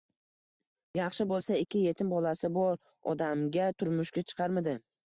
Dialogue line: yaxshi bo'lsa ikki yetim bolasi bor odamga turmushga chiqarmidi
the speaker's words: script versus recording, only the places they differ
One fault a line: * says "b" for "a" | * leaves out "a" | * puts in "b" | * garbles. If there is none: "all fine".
all fine